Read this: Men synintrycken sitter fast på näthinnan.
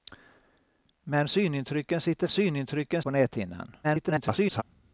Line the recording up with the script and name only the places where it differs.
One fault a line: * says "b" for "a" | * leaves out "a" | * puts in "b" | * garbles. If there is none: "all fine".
* says "synintrycken" for "fast"
* garbles